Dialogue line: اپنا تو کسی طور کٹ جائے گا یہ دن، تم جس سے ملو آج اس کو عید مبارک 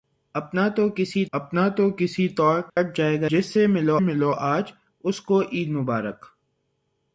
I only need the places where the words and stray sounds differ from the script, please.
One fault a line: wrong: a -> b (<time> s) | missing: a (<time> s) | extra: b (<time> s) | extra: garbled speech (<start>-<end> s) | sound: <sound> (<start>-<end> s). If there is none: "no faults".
extra: اپنا تو کسی (1.3 s)
sound: dropout (2.7-2.8 s)
missing: یہ دن تم (3.3 s)
extra: ملو (4.0 s)